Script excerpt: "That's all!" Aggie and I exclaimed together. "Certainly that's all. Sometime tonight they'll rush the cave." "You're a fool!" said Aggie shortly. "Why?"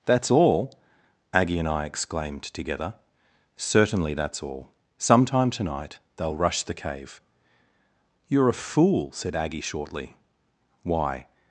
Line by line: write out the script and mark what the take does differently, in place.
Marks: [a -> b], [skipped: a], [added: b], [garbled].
"That's all!" Aggie and I exclaimed together. "Certainly that's all. Sometime tonight they'll rush the cave." "You're a fool!" said Aggie shortly. "Why?"